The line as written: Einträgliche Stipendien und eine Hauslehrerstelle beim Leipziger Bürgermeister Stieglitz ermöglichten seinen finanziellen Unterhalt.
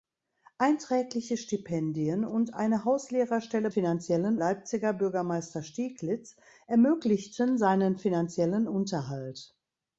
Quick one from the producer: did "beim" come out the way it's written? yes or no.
no